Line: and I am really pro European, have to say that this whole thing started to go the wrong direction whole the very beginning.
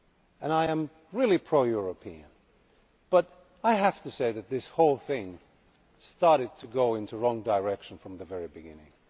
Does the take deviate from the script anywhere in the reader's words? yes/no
yes